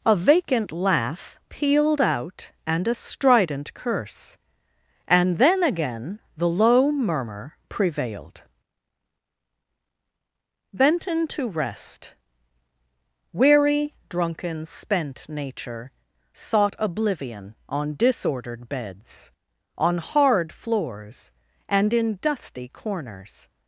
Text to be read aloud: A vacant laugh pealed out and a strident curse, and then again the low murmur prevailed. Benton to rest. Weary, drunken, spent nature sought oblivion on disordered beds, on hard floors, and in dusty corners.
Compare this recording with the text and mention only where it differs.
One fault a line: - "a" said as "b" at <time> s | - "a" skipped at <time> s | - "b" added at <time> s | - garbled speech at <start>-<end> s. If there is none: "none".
none